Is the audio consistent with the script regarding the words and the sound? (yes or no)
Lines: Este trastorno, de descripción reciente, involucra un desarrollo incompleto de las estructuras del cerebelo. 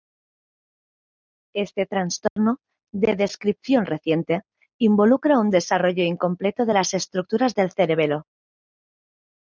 no